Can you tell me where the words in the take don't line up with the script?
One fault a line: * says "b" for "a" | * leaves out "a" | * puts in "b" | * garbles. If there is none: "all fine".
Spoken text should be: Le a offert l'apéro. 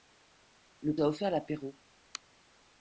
all fine